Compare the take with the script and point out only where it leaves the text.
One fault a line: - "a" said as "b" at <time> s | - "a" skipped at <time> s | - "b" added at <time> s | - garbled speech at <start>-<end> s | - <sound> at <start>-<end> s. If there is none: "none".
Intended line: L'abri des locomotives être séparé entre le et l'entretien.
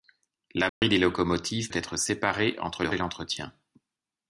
- dropout at 0.7-0.8 s